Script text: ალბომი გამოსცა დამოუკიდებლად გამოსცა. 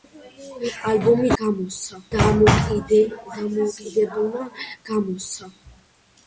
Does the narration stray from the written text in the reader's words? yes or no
no